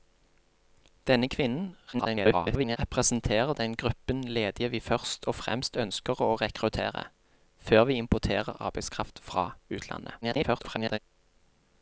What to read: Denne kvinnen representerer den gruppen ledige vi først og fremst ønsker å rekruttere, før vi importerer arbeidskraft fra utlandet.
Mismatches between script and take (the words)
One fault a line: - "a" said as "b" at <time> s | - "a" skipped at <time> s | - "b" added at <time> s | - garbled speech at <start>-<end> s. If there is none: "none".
- garbled speech at 1.9-2.8 s
- garbled speech at 10.2-11.0 s